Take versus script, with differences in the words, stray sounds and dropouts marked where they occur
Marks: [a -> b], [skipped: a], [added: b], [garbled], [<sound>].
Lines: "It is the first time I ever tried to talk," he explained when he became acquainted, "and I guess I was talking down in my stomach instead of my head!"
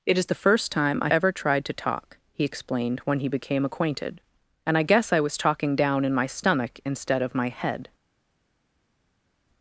"It is the first time I ever tried to talk," he explained when he became acquainted, "and I guess I was talking down in my stomach instead of my head!"